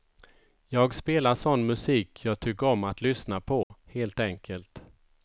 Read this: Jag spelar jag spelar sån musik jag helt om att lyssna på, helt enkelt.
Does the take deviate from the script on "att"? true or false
false